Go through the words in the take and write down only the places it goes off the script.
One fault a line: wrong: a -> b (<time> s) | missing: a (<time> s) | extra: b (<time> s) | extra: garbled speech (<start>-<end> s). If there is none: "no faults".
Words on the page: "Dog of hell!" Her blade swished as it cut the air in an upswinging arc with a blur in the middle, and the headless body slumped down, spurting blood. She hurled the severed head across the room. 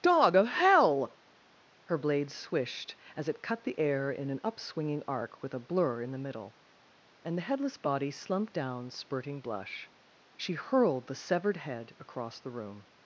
wrong: blood -> blush (9.4 s)